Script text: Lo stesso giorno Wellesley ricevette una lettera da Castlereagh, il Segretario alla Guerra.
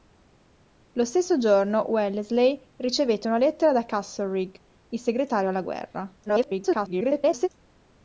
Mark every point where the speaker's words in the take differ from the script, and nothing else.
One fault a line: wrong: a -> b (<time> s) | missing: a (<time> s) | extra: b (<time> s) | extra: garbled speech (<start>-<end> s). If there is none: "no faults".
extra: garbled speech (6.3-7.5 s)